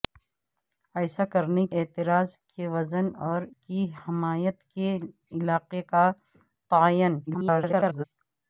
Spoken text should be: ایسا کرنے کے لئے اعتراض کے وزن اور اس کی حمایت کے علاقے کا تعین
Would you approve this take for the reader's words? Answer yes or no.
no